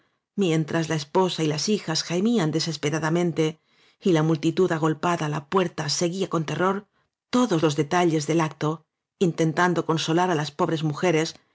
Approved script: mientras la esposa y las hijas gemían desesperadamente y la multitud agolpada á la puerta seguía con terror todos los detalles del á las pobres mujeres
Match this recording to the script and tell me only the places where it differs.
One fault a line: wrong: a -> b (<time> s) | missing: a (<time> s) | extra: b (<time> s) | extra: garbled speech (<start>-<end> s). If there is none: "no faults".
extra: acto intentando consolar (8.4 s)